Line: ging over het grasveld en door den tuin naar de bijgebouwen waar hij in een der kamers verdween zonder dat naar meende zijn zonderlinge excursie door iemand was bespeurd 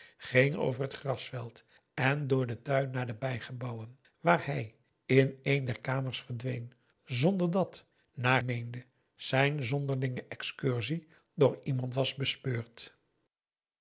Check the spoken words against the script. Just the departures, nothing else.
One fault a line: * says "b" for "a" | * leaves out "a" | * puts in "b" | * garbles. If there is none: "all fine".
all fine